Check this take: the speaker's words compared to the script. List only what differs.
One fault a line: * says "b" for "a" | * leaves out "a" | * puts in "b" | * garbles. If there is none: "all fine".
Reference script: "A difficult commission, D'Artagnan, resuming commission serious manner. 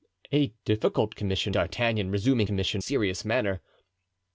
all fine